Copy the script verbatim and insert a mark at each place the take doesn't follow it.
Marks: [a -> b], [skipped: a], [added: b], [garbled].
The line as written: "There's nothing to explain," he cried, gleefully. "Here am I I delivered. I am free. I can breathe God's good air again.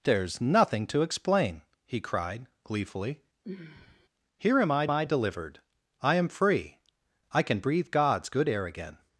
"There's nothing to explain," he cried, gleefully. "Here am I I delivered. I am free. I can breathe God's good air again.